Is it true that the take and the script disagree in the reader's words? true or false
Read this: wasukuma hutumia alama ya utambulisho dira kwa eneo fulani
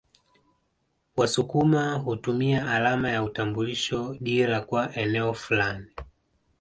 false